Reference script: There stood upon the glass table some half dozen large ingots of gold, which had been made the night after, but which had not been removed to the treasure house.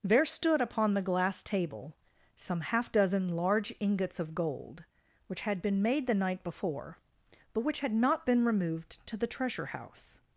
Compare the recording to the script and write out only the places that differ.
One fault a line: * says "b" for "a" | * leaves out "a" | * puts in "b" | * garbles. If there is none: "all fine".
* says "before" for "after"